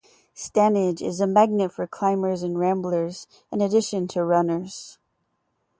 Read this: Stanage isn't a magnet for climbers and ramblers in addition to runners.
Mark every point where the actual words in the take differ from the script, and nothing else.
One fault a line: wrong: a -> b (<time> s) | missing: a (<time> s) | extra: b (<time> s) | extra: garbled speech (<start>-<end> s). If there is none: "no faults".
wrong: isn't -> is (1.0 s)